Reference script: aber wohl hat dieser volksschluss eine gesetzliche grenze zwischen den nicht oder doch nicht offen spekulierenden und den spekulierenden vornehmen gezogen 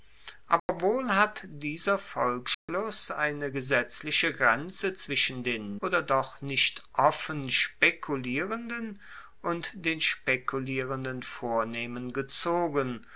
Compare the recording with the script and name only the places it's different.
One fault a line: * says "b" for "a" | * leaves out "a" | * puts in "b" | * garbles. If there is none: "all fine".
* leaves out "nicht"